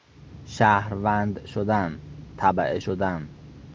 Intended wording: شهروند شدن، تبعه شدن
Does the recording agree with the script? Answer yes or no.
yes